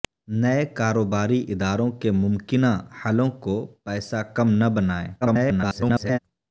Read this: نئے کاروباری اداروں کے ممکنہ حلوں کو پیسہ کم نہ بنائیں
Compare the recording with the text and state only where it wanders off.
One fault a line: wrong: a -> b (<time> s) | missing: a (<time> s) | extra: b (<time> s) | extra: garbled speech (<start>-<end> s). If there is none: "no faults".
extra: garbled speech (5.2-6.2 s)